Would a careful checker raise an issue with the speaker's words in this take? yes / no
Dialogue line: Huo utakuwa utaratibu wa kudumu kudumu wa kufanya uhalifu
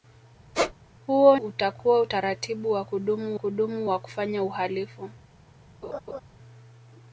no